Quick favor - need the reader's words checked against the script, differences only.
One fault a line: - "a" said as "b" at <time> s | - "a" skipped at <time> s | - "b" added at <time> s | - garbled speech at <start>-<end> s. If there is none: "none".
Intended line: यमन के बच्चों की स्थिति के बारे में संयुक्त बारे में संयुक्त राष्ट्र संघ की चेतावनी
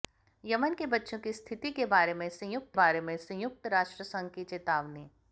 none